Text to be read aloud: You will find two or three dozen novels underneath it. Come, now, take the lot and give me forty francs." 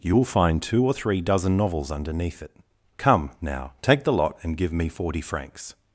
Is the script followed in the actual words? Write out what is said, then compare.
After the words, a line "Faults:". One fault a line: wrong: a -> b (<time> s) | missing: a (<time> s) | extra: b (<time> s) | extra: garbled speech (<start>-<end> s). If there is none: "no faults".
You will find two or three dozen novels underneath it. Come, now, take the lot and give me forty francs."
Faults:
no faults